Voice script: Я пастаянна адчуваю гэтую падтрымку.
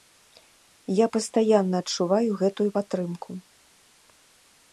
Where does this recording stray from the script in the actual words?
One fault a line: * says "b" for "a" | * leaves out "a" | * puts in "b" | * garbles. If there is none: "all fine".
all fine